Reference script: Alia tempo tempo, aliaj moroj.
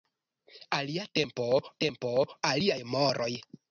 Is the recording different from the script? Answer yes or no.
no